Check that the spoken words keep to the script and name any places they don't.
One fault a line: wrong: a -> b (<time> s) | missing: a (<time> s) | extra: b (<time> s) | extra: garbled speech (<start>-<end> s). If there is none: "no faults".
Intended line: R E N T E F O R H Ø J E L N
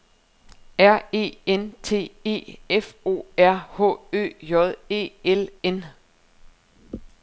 no faults